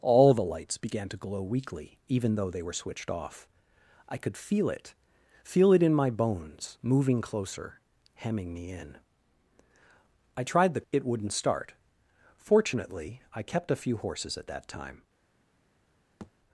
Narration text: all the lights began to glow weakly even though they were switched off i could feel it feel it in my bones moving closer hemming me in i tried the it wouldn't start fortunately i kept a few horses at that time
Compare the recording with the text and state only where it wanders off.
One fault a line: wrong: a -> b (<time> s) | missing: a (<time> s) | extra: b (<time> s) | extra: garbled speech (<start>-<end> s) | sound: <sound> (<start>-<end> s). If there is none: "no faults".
sound: thud (16.2-16.3 s)